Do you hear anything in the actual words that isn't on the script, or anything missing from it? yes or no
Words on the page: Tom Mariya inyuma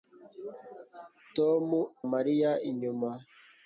no